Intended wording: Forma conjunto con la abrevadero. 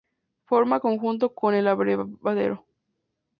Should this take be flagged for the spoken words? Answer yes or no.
yes